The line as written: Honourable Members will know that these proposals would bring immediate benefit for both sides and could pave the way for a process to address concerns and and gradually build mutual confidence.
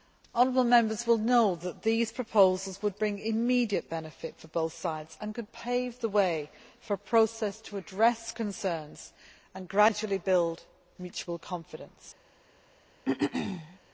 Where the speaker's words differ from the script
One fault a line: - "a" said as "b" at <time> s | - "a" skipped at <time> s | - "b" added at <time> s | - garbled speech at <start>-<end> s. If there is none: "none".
- "and" skipped at 9.7 s